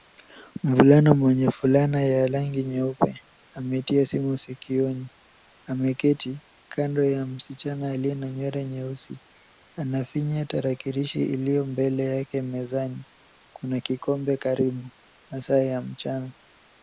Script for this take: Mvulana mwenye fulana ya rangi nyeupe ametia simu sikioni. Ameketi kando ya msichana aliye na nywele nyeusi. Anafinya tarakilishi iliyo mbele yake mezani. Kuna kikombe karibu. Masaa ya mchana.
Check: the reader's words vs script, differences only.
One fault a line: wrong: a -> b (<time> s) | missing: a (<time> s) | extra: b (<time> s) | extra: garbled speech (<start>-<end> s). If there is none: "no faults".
no faults